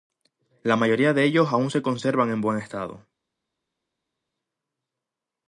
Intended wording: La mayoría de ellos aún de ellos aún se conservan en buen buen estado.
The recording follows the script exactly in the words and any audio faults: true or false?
false